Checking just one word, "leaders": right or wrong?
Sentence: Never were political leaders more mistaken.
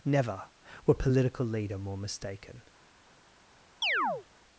wrong